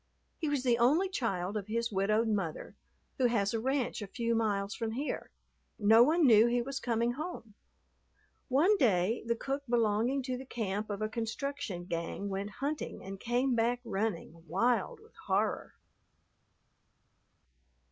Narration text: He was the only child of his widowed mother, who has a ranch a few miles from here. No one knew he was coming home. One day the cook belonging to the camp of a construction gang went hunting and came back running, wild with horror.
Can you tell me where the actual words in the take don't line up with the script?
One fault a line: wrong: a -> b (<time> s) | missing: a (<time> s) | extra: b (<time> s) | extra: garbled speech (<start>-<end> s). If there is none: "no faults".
no faults